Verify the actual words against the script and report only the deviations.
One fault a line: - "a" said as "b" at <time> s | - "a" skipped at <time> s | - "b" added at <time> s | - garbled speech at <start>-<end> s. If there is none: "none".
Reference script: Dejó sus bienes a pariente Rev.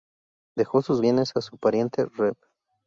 - "su" added at 1.4 s